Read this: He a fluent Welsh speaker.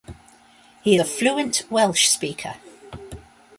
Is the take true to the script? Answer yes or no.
yes